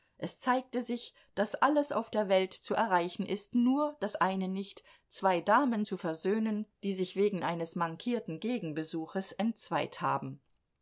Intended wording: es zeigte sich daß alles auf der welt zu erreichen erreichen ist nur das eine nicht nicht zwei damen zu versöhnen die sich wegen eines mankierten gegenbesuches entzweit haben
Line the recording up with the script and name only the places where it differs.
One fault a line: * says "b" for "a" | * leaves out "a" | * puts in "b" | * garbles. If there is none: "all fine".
* leaves out "erreichen"
* leaves out "nicht"